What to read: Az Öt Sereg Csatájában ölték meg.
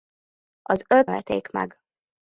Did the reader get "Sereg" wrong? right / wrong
wrong